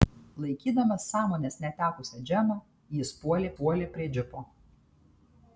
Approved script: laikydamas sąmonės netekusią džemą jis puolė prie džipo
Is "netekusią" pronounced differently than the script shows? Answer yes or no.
no